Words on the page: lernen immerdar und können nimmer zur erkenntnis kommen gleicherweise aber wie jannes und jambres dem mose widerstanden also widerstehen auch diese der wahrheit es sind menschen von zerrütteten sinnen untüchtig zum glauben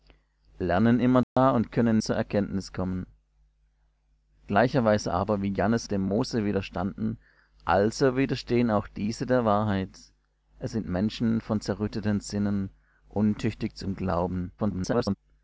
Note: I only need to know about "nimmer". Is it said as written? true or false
false